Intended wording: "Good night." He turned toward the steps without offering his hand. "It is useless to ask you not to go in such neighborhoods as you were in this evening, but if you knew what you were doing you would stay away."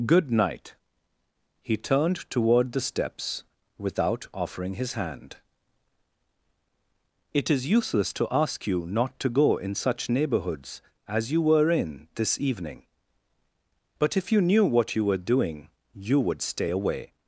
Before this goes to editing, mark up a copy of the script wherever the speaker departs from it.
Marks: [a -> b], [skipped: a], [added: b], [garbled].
"Good night." He turned toward the steps without offering his hand. "It is useless to ask you not to go in such neighborhoods as you were in this evening, but if you knew what you were doing you would stay away."